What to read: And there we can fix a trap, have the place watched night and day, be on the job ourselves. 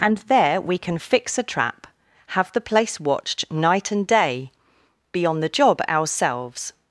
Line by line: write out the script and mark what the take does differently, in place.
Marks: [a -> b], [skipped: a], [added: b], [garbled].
And there we can fix a trap, have the place watched night and day, be on the job ourselves.